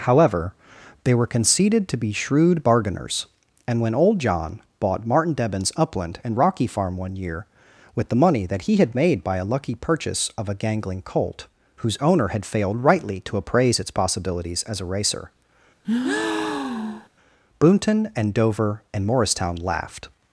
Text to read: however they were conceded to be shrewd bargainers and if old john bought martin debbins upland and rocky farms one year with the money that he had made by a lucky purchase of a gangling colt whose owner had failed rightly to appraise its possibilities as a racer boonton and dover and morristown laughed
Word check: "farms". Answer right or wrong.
wrong